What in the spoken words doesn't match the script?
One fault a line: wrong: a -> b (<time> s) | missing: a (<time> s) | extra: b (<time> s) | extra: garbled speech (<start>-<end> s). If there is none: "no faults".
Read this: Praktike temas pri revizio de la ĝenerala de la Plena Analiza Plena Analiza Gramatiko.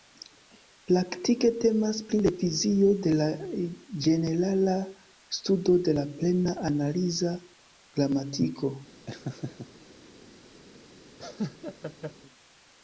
extra: studo (5.4 s)
missing: Plena Analiza (7.4 s)